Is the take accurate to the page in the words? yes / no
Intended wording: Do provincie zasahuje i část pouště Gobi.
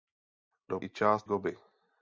no